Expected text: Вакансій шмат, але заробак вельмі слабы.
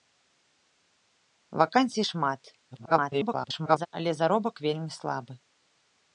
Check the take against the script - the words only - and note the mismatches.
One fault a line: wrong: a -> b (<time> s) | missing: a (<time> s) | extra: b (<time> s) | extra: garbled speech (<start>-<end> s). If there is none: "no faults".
extra: garbled speech (2.7-3.9 s)